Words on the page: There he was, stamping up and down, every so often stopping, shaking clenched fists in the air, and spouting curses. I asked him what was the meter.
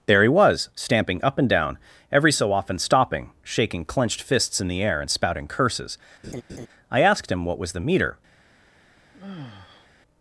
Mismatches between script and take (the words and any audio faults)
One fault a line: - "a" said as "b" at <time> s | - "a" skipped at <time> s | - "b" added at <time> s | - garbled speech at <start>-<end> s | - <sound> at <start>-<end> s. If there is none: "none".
- laugh at 6.2-6.7 s
- sigh at 9.1-9.9 s